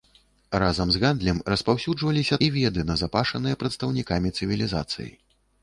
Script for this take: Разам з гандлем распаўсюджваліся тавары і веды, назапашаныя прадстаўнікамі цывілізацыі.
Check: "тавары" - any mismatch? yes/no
yes